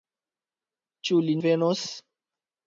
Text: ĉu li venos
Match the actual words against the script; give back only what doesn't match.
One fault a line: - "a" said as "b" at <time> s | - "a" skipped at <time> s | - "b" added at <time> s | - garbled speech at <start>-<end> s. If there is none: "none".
none